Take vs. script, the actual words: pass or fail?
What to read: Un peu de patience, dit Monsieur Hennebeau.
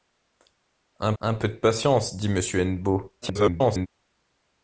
fail